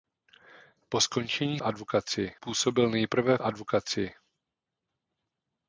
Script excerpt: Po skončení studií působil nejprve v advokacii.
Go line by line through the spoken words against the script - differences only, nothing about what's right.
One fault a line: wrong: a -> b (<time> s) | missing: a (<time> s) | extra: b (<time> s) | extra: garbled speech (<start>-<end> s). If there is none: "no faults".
wrong: studií -> advokacii (1.6 s)
missing: v (3.4 s)